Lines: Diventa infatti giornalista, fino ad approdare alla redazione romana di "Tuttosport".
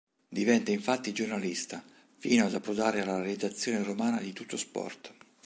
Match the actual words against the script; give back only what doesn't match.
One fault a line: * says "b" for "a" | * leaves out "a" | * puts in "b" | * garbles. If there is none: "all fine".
all fine